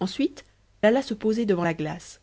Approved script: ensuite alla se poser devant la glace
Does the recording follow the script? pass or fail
pass